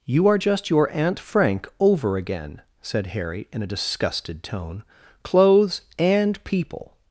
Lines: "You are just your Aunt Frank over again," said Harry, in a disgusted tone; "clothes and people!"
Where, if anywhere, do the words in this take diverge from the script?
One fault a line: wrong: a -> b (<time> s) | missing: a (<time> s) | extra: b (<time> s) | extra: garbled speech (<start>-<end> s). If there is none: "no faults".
no faults